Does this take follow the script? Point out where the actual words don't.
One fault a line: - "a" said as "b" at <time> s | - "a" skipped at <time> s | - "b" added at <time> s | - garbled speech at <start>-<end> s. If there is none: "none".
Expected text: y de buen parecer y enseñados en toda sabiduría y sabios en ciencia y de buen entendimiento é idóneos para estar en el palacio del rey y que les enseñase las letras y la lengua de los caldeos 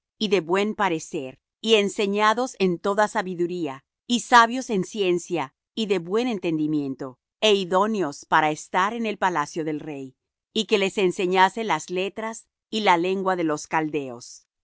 none